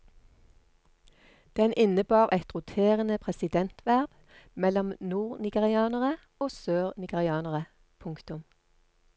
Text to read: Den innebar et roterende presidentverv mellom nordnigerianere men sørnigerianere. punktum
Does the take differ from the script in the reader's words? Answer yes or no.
yes